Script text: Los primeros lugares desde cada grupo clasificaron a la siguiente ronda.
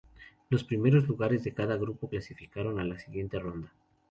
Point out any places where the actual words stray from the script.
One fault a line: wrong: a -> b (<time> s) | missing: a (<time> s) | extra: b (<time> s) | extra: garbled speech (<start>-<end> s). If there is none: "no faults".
wrong: desde -> de (1.4 s)